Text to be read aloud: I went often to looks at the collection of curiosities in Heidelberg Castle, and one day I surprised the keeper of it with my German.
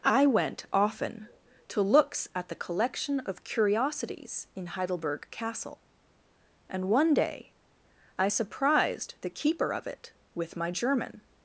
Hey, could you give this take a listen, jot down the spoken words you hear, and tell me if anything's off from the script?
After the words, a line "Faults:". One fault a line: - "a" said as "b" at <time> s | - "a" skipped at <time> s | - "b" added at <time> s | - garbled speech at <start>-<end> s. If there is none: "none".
I went often to looks at the collection of curiosities in Heidelberg Castle, and one day I surprised the keeper of it with my German.
Faults:
none